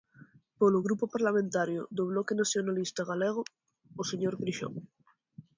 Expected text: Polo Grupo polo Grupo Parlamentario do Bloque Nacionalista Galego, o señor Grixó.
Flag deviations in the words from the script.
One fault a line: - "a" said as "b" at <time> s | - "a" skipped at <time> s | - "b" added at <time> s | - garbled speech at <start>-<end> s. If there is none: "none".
- "polo Grupo" skipped at 1.1 s